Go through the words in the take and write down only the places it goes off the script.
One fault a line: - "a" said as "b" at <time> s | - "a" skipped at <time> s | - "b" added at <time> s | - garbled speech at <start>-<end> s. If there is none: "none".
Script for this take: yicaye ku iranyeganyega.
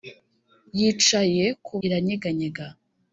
none